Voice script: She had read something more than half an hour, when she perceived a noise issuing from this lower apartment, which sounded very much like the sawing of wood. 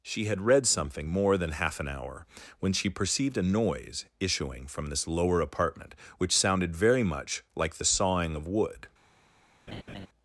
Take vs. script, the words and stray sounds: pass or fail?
fail